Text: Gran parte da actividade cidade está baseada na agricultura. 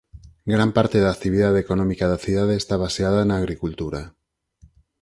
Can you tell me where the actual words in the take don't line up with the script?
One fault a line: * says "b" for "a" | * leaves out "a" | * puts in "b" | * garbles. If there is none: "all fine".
* puts in "económica da"